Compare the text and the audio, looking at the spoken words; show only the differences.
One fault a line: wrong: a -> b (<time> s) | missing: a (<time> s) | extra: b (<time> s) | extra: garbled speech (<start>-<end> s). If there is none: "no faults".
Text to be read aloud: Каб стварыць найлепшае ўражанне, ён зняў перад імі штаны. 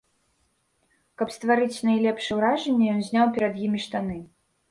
no faults